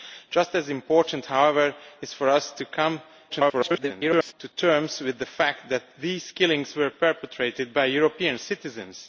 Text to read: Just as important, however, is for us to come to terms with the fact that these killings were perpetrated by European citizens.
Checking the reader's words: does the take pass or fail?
fail